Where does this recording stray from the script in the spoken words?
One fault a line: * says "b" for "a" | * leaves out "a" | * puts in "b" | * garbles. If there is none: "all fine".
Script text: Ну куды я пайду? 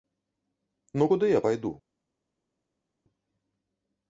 all fine